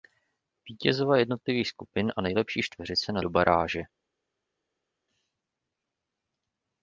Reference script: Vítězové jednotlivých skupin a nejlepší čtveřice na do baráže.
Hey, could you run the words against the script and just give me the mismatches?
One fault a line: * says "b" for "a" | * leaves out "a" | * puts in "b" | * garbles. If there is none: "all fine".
all fine